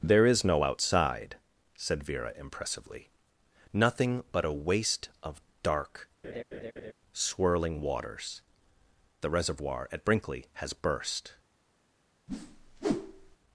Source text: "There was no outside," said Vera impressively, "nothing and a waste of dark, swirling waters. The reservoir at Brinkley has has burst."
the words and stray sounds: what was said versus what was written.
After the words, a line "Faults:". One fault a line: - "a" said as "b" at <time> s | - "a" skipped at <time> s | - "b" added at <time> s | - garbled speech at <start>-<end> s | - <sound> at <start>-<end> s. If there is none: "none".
"There is no outside," said Vera impressively, "nothing but a waste of dark, swirling waters. The reservoir at Brinkley has burst."
Faults:
- "was" said as "is" at 0.2 s
- "and" said as "but" at 4.3 s
- laugh at 6.2-6.9 s
- "has" skipped at 10.7 s
- whoosh at 12.3-13.4 s